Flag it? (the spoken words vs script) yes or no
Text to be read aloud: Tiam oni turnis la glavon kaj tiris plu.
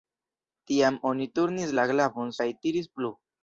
no